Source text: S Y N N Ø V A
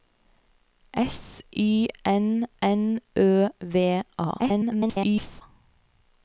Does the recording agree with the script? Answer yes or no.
no